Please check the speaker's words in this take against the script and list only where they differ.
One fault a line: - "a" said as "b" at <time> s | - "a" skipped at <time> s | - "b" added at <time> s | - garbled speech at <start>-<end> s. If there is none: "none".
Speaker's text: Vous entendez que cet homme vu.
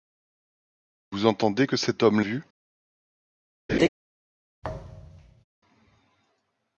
none